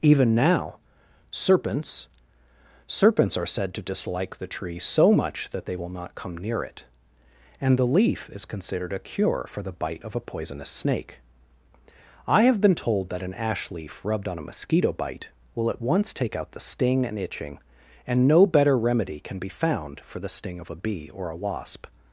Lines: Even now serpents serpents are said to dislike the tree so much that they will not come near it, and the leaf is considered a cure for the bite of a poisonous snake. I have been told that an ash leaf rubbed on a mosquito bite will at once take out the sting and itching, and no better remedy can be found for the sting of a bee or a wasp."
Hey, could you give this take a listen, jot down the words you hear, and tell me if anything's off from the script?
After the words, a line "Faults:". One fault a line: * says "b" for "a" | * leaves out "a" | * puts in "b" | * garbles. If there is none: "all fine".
Even now serpents serpents are said to dislike the tree so much that they will not come near it, and the leaf is considered a cure for the bite of a poisonous snake. I have been told that an ash leaf rubbed on a mosquito bite will at once take out the sting and itching, and no better remedy can be found for the sting of a bee or a wasp."
Faults:
all fine